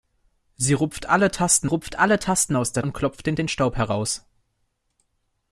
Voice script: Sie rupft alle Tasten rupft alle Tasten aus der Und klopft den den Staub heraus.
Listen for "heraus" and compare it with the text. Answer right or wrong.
right